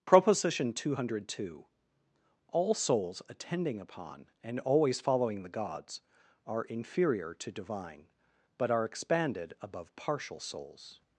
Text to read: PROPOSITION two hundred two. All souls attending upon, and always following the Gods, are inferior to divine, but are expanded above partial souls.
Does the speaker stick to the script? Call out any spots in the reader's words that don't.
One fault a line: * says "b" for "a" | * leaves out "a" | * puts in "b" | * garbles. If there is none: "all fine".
all fine